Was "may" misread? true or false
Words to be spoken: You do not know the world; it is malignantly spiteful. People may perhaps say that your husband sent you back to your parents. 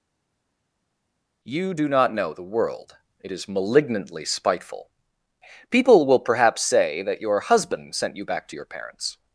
true